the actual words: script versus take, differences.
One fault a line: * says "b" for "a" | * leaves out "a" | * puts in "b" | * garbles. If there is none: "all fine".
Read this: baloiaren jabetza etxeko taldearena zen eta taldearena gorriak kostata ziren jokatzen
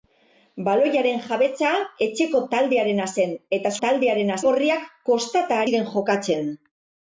all fine